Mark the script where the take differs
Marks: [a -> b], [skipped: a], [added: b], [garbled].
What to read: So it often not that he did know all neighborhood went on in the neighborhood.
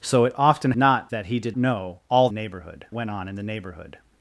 So it often not that he did know all neighborhood went on in the neighborhood.